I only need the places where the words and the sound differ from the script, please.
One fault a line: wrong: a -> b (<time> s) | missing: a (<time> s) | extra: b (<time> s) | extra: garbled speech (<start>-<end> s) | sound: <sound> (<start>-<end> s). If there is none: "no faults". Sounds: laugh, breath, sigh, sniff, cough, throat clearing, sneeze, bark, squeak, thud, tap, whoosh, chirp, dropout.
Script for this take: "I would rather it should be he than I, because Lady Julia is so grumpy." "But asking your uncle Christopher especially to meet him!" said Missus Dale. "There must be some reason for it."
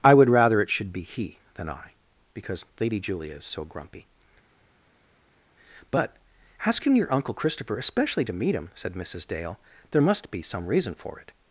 no faults